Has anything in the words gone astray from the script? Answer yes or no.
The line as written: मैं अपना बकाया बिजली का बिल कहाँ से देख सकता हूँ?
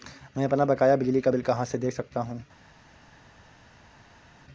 no